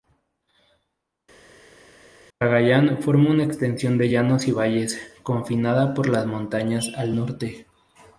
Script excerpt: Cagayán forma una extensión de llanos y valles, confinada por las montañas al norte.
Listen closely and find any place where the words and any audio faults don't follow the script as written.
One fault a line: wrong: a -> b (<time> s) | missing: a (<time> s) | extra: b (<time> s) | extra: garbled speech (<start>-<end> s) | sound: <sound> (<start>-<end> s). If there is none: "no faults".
no faults